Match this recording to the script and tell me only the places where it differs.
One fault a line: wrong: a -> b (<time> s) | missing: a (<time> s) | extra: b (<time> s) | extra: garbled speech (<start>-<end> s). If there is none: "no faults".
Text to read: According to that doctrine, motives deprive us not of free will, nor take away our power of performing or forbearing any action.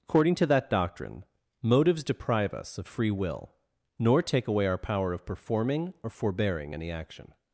missing: not (2.8 s)